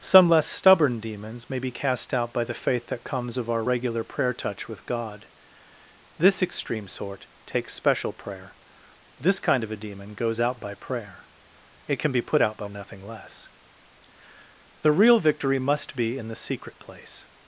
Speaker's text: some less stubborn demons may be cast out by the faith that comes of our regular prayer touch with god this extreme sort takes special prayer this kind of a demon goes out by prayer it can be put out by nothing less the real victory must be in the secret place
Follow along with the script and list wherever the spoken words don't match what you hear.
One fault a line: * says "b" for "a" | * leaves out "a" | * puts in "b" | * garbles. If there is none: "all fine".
all fine